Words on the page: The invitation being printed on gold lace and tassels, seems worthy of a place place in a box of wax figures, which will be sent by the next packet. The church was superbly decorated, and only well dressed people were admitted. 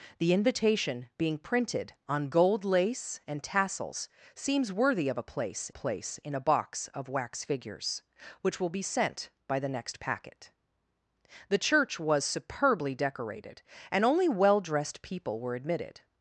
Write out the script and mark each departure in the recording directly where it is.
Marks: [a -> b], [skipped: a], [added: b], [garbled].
The invitation being printed on gold lace and tassels, seems worthy of a place place in a box of wax figures, which will be sent by the next packet. The church was superbly decorated, and only well dressed people were admitted.